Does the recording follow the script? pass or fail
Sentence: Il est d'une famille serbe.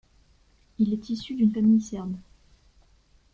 fail